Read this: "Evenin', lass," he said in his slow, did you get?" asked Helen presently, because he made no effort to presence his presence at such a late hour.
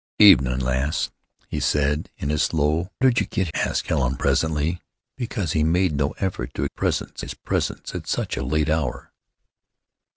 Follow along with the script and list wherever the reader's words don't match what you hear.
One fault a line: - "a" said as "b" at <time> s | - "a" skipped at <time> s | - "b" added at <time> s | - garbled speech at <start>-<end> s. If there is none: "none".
none